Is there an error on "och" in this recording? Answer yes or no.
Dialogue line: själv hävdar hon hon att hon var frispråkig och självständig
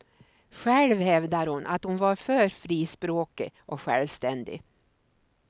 no